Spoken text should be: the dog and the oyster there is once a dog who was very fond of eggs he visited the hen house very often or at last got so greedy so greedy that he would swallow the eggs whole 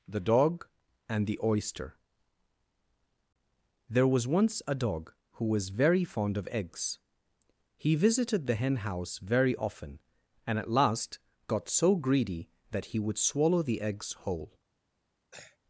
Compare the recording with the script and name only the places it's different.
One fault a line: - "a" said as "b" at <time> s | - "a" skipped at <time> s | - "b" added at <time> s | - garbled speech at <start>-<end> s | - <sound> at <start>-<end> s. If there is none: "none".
- "is" said as "was" at 4.1 s
- "or" said as "and" at 10.5 s
- "so greedy" skipped at 12.5 s
- throat clearing at 15.3-15.6 s